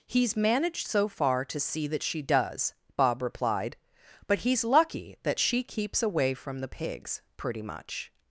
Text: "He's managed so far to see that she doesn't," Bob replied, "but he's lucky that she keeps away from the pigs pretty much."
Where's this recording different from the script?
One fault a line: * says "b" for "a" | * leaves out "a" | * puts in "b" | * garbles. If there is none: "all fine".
* says "does" for "doesn't"